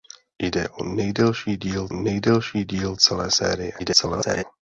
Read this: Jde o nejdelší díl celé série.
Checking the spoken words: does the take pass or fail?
fail